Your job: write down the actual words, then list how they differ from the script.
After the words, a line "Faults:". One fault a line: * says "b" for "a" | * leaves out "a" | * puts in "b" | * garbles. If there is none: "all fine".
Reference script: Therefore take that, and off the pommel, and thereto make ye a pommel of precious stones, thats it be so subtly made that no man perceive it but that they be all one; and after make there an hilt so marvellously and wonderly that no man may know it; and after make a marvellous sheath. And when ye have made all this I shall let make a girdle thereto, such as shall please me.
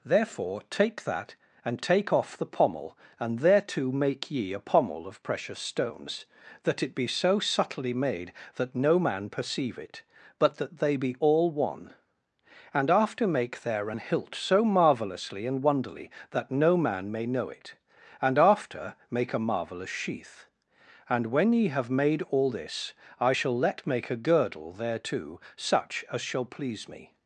Therefore take that, and take off the pommel, and thereto make ye a pommel of precious stones, that it be so subtly made that no man perceive it but that they be all one; and after make there an hilt so marvellously and wonderly that no man may know it; and after make a marvellous sheath. And when ye have made all this I shall let make a girdle thereto, such as shall please me.
Faults:
* puts in "take"
* says "that" for "thats"